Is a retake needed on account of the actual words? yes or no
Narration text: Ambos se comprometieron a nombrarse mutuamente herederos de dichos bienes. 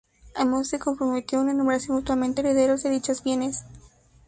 no